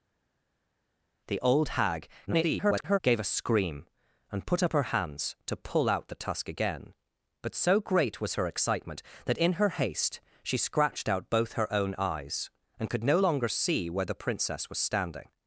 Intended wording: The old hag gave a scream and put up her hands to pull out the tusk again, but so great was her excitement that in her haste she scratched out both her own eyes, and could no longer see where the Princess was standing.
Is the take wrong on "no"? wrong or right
right